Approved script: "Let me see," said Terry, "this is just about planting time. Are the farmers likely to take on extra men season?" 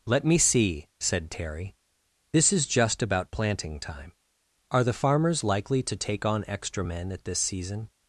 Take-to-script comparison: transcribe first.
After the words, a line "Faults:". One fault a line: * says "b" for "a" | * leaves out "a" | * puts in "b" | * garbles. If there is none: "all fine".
"Let me see," said Terry, "this is just about planting time. Are the farmers likely to take on extra men at this season?"
Faults:
* puts in "at this"